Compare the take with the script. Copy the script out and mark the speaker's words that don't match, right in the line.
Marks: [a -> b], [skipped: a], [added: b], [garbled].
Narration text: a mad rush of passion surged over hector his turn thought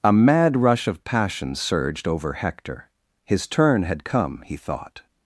a mad rush of passion surged over hector his turn [added: had come he] thought